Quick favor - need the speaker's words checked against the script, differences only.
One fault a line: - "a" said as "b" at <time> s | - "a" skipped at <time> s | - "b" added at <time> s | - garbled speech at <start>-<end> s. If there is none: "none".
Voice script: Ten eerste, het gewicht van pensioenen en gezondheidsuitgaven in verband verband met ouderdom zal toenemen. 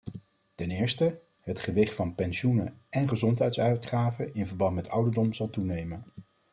- "verband" skipped at 4.7 s